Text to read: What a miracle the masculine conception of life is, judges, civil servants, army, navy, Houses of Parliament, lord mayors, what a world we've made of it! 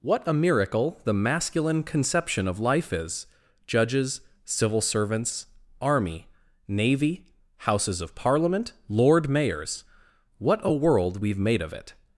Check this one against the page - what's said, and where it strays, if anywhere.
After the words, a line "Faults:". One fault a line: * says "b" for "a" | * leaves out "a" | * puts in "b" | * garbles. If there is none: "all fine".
What a miracle the masculine conception of life is, judges, civil servants, army, navy, Houses of Parliament, lord mayors, what a world we've made of it!
Faults:
all fine